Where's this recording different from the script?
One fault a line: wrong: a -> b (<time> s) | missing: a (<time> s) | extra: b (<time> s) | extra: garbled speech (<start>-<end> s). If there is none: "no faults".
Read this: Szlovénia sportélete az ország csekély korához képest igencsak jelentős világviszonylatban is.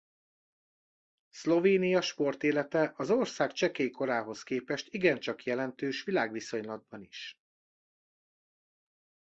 no faults